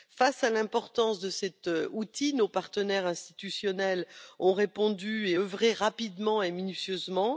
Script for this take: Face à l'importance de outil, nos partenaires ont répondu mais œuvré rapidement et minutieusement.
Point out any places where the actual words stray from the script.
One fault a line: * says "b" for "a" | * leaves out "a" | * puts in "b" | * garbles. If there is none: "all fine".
* puts in "cet"
* puts in "institutionnels"
* says "et" for "mais"